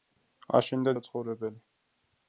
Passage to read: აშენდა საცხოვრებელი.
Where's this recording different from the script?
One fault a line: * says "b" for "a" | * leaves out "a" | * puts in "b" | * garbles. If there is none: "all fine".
all fine